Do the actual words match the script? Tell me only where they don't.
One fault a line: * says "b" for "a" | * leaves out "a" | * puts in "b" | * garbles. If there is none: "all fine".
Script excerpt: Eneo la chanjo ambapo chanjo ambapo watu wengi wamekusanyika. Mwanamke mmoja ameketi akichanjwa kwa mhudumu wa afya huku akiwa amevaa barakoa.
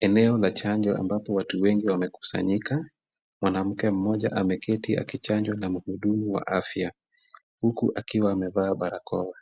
* leaves out "chanjo ambapo"
* says "na" for "kwa"